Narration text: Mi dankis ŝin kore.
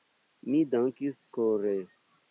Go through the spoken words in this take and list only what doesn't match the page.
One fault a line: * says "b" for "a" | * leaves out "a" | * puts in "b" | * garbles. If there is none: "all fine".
* leaves out "ŝin"